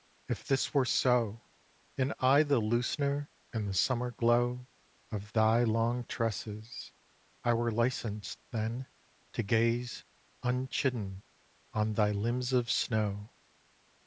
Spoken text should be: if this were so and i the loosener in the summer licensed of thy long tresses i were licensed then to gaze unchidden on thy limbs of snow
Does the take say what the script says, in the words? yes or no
no